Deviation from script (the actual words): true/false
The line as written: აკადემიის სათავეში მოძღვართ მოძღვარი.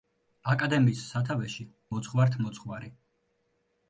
false